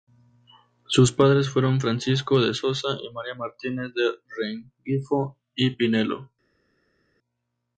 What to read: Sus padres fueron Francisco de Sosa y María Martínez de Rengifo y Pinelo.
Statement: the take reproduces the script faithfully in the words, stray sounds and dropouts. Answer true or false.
true